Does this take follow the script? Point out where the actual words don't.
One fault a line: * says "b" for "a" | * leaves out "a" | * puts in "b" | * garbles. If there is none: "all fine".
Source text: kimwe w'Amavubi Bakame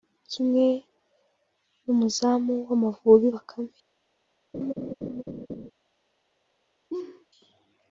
* puts in "n'umuzamu"